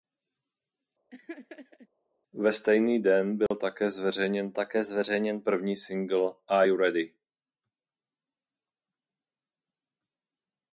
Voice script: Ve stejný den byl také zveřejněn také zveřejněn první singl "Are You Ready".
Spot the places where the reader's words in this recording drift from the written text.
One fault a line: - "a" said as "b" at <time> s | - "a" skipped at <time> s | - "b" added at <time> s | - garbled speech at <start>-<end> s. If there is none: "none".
none